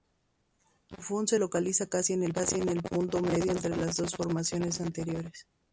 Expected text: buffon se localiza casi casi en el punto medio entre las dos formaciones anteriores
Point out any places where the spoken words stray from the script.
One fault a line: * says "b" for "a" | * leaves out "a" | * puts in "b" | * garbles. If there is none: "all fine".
* leaves out "casi"